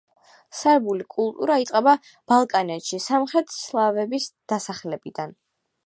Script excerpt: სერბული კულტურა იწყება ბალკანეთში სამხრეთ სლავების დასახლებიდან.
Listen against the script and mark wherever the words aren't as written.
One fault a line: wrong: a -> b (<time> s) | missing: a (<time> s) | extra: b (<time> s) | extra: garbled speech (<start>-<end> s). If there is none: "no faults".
no faults